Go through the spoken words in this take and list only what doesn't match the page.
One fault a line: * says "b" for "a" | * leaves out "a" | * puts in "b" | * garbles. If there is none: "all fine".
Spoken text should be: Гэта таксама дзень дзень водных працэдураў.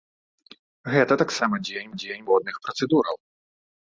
all fine